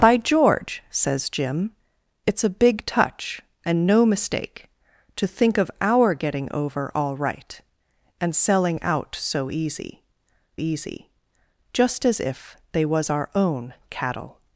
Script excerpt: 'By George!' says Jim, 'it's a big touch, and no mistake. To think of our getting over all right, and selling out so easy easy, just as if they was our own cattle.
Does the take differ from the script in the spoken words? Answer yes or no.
no